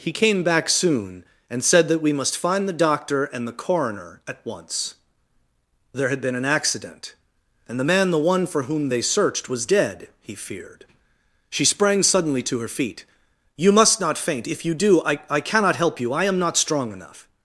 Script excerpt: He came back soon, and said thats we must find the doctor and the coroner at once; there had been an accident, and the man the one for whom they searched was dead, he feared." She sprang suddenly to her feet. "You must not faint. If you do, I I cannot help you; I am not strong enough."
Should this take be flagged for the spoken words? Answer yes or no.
yes